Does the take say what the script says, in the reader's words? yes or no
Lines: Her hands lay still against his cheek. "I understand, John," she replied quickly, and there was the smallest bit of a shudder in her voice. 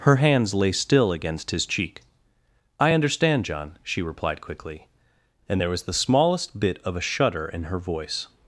yes